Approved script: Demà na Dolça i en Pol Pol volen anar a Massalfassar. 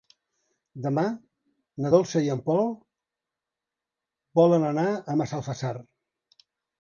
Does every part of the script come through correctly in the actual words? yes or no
no